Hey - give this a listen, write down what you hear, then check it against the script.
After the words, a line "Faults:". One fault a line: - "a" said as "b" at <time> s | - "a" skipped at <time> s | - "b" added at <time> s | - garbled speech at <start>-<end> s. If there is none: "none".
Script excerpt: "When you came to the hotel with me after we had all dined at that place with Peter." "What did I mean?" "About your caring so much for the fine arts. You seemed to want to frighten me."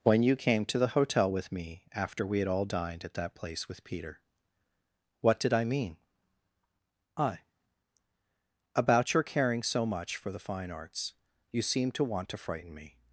"When you came to the hotel with me after we had all dined at that place with Peter." "What did I mean?" I "About your caring so much for the fine arts. You seemed to want to frighten me."
Faults:
- "I" added at 7.2 s